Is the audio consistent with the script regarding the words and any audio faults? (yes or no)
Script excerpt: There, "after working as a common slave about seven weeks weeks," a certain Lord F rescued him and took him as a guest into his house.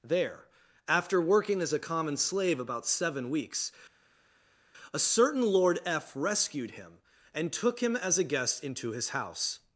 no